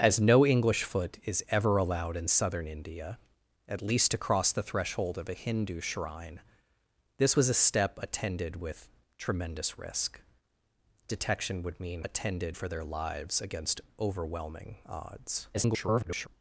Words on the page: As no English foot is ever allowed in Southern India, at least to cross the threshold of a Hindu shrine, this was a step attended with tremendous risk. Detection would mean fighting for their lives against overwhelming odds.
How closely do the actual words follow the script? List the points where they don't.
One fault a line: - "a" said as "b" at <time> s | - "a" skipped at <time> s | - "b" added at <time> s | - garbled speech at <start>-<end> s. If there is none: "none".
- "fighting" said as "attended" at 12.0 s
- garbled speech at 15.5-16.3 s